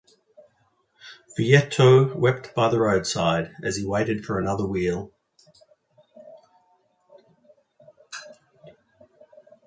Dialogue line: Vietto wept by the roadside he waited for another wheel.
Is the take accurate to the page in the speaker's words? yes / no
no